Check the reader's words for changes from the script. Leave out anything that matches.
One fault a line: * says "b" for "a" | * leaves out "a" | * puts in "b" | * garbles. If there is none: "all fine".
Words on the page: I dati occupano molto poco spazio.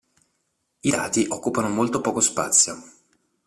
all fine